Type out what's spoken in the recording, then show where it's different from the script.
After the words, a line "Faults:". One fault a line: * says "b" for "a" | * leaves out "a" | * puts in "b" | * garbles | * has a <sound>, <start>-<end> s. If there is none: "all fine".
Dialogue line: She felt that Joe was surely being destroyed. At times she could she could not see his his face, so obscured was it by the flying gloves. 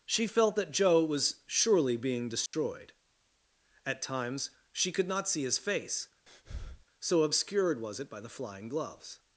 She felt that Joe was surely being destroyed. At times she could not see his face, so obscured was it by the flying gloves.
Faults:
* has a dropout, 2.5-2.5 s
* leaves out "she could"
* leaves out "his"
* has a breath, 6.3-6.9 s